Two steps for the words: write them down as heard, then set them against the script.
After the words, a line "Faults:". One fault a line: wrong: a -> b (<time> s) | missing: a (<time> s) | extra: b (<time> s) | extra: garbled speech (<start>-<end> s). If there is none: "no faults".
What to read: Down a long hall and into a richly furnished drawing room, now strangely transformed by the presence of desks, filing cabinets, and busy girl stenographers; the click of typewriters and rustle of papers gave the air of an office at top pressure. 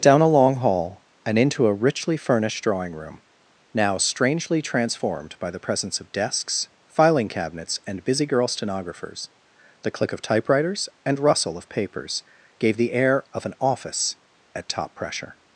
Down a long hall and into a richly furnished drawing room, now strangely transformed by the presence of desks, filing cabinets, and busy girl stenographers; the click of typewriters and rustle of papers gave the air of an office at top pressure.
Faults:
no faults